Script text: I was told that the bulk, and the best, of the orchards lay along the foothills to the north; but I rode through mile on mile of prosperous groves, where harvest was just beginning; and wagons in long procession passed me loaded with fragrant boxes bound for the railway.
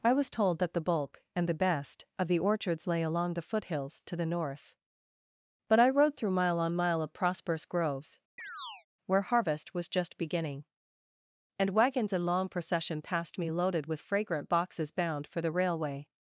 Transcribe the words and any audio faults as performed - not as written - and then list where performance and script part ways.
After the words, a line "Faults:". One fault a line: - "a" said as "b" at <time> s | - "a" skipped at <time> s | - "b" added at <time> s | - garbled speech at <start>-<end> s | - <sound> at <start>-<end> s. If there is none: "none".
I was told that the bulk, and the best, of the orchards lay along the foothills to the north; but I rode through mile on mile of prosperous groves, where harvest was just beginning; and wagons in long procession passed me loaded with fragrant boxes bound for the railway.
Faults:
- chirp at 8.4-8.9 s